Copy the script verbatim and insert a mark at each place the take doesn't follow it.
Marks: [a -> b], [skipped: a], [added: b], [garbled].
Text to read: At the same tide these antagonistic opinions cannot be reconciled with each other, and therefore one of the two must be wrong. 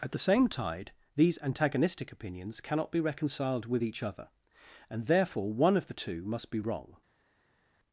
At the same tide these antagonistic opinions cannot be reconciled with each other, and therefore one of the two must be wrong.